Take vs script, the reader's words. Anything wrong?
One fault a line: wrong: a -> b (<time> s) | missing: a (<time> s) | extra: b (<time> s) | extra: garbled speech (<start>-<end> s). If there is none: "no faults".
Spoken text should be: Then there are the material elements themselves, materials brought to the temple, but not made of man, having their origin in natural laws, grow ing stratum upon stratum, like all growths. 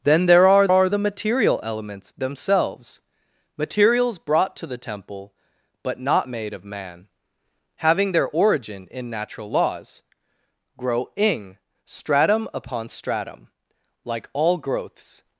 extra: are (0.7 s)